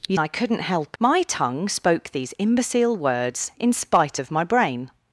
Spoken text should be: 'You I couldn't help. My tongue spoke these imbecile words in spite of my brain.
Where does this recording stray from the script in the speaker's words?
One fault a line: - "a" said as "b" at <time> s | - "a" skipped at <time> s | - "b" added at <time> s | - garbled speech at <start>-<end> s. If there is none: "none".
none